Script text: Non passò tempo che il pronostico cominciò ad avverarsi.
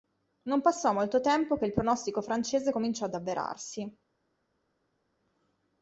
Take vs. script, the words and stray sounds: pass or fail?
fail